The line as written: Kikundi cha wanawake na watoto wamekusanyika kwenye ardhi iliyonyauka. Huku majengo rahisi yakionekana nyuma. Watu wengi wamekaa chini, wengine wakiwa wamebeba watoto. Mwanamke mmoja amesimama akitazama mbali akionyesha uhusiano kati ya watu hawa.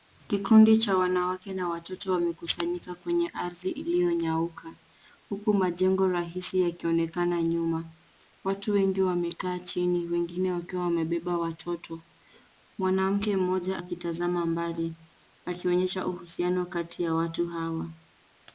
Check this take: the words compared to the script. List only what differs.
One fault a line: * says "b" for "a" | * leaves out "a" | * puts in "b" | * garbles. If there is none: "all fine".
* leaves out "amesimama"